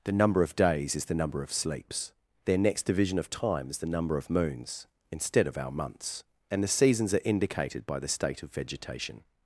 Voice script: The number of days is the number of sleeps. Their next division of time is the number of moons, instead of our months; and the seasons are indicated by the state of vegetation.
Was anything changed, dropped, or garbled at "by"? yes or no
no